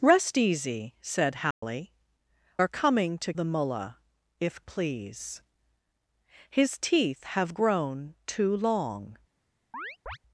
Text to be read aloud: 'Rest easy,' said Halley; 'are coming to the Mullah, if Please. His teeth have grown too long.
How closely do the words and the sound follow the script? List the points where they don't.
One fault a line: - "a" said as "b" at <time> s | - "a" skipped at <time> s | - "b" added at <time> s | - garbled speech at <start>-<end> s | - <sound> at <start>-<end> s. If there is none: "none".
- dropout at 1.5-1.6 s
- chirp at 9.7-10.2 s